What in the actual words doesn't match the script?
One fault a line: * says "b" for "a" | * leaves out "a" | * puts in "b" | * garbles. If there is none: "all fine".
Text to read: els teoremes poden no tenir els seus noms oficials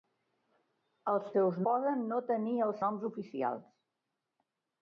* says "seus" for "teoremes"
* leaves out "seus"